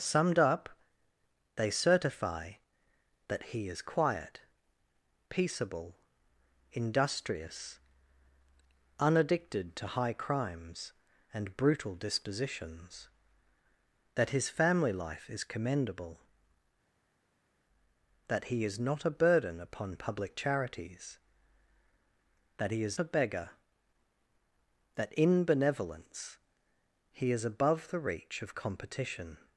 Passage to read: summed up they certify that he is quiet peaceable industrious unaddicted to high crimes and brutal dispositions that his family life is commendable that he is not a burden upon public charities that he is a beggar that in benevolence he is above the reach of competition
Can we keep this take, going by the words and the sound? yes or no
yes